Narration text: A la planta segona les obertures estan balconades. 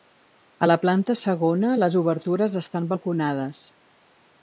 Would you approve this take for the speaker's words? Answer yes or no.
yes